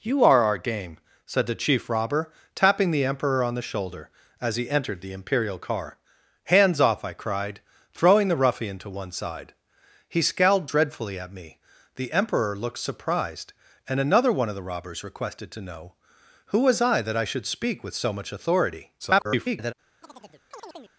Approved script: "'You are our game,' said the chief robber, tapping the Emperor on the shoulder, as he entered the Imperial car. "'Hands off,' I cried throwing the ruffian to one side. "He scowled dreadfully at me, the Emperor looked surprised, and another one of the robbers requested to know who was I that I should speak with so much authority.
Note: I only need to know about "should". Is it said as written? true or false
true